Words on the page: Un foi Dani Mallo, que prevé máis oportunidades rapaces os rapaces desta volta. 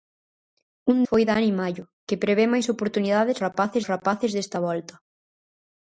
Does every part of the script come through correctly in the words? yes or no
yes